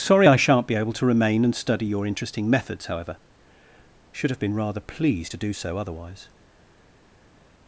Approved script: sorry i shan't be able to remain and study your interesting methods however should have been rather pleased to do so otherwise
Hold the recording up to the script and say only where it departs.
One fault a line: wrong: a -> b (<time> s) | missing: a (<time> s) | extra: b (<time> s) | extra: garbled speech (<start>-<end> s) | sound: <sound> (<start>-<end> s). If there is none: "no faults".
no faults